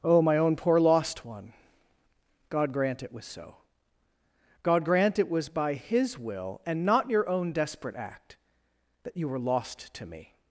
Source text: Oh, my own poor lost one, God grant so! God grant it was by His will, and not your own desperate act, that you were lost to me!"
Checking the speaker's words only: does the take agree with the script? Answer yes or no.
no